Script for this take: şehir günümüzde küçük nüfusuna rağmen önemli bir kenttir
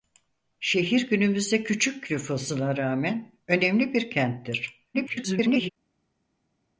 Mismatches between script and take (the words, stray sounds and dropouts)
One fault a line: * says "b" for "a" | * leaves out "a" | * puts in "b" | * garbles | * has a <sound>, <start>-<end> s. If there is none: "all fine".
* garbles